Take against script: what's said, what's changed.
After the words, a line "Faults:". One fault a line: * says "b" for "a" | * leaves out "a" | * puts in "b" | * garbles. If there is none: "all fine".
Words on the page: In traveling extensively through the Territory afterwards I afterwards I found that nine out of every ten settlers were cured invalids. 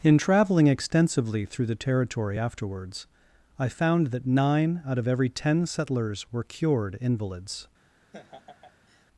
In traveling extensively through the Territory afterwards I found that nine out of every ten settlers were cured invalids.
Faults:
* leaves out "afterwards I"